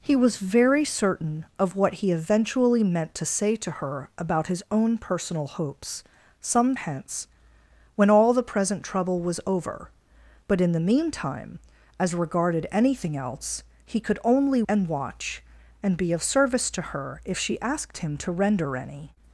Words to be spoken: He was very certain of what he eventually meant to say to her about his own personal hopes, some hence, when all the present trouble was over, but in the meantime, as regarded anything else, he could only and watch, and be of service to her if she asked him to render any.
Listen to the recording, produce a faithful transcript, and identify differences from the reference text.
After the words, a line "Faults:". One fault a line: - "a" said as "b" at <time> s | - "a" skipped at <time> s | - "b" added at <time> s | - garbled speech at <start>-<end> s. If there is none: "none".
He was very certain of what he eventually meant to say to her about his own personal hopes, some hence, when all the present trouble was over, but in the meantime, as regarded anything else, he could only and watch, and be of service to her if she asked him to render any.
Faults:
none